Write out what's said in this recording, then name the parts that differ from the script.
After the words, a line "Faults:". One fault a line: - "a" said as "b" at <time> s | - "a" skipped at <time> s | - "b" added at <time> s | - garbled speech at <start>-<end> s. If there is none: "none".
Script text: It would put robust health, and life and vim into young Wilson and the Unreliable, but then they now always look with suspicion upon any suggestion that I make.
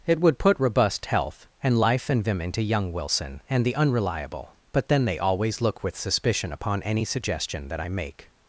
It would put robust health, and life and vim into young Wilson and the Unreliable, but then they always look with suspicion upon any suggestion that I make.
Faults:
- "now" skipped at 5.2 s